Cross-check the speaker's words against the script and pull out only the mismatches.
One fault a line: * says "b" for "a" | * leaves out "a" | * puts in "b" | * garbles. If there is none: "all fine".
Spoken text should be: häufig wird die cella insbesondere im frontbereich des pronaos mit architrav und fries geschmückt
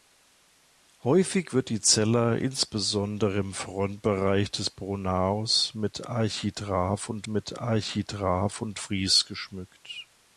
* puts in "mit architrav und"